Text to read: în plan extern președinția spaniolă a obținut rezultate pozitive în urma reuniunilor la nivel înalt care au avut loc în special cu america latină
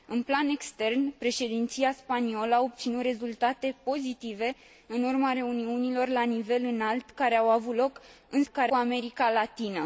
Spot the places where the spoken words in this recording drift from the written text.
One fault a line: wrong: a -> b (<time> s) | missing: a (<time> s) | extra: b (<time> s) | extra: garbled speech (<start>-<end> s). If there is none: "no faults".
wrong: special -> care (8.5 s)